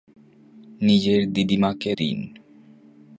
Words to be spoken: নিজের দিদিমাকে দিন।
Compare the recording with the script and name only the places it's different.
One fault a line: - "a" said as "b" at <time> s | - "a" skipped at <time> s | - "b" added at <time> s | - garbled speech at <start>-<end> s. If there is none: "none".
none